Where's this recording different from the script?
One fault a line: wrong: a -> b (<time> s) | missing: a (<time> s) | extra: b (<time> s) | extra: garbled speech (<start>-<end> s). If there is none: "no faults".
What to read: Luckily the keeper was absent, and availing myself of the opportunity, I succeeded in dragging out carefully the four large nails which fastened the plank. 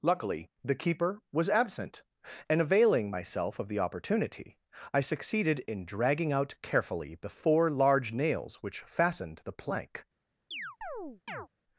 no faults